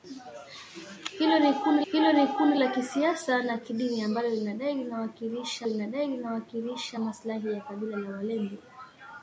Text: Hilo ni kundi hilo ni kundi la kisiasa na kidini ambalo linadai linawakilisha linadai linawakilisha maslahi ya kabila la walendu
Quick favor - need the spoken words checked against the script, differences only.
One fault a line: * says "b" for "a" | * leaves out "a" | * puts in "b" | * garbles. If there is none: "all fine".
all fine